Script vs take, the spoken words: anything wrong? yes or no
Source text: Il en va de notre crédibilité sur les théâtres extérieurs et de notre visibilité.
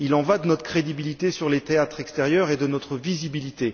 no